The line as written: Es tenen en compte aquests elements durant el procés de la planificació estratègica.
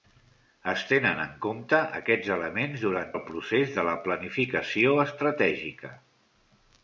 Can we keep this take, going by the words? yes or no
yes